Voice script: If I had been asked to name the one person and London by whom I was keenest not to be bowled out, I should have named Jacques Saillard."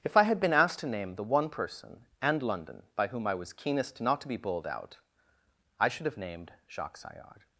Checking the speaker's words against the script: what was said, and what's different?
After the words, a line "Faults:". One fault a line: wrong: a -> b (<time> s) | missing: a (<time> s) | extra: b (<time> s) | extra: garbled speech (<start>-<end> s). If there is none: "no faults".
If I had been asked to name the one person and London by whom I was keenest not to be bowled out, I should have named Jacques Saillard."
Faults:
no faults